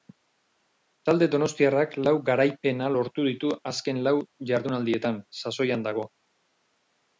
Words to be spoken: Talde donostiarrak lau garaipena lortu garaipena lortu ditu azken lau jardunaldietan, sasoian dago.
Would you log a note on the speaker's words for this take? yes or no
yes